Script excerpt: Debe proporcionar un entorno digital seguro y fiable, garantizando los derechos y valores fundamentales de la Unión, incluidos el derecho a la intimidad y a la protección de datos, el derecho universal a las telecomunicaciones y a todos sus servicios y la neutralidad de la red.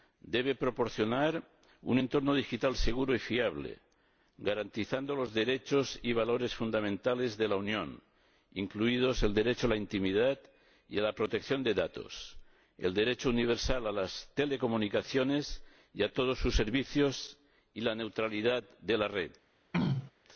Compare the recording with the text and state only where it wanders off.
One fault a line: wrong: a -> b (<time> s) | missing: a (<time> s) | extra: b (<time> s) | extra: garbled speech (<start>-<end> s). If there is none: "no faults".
no faults